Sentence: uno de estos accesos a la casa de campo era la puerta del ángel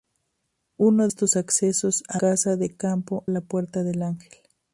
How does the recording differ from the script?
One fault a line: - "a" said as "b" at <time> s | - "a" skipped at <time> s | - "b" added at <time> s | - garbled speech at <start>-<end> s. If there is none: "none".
- "de" skipped at 1.1 s
- "la" skipped at 2.2 s
- "era" skipped at 3.3 s